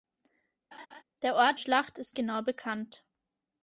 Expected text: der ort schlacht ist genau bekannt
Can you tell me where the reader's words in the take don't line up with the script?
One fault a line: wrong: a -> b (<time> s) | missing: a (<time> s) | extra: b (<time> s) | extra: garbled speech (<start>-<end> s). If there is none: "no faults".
no faults